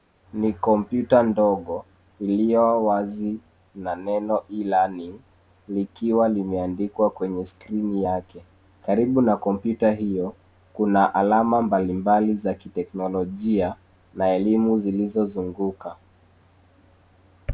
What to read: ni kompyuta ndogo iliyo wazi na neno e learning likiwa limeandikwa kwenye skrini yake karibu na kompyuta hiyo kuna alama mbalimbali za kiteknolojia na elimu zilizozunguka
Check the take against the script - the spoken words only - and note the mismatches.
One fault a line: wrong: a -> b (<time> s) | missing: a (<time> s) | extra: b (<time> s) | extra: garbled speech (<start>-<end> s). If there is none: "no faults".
no faults